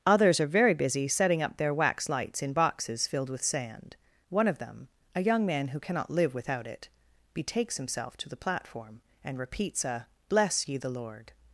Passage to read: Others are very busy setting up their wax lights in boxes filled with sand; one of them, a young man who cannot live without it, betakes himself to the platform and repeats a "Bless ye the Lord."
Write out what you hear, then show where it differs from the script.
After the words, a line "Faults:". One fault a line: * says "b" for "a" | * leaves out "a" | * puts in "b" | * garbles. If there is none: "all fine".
Others are very busy setting up their wax lights in boxes filled with sand; one of them, a young man who cannot live without it, betakes himself to the platform and repeats a "Bless ye the Lord."
Faults:
all fine